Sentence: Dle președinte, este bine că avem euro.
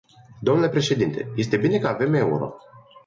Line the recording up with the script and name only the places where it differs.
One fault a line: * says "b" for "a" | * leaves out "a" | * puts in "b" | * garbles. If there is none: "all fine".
all fine